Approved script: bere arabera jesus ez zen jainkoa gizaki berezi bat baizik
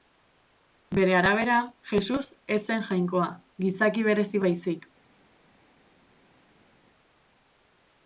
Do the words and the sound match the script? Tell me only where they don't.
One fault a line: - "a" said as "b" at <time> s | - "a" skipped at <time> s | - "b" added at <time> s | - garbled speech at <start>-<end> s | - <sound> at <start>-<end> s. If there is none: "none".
- "bat" skipped at 4.4 s